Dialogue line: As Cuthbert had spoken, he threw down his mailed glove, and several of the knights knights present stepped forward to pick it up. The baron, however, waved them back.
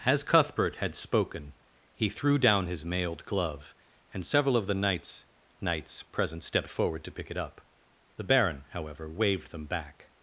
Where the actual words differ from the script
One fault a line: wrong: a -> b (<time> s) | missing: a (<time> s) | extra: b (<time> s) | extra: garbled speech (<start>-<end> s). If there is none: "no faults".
no faults